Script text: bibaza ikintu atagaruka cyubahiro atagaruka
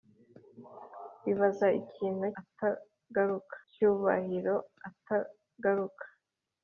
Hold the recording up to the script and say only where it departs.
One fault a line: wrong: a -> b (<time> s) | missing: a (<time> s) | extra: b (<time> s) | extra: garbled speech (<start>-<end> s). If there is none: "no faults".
no faults